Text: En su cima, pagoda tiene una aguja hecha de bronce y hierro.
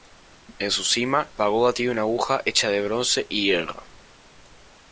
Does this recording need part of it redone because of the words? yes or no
no